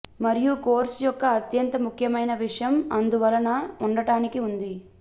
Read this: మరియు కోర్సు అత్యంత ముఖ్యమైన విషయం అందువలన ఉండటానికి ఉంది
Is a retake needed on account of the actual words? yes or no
yes